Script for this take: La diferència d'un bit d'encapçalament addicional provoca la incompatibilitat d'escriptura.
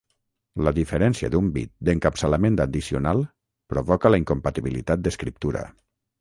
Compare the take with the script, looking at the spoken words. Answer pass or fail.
pass